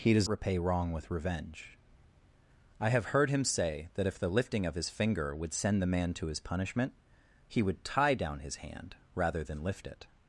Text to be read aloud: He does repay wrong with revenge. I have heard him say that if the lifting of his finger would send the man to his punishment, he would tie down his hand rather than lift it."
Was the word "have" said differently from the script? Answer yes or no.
no